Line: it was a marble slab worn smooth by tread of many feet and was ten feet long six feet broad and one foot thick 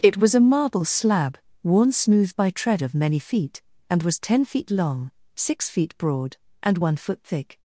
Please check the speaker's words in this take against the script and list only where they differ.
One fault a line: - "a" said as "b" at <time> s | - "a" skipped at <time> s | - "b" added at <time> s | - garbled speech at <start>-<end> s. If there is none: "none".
none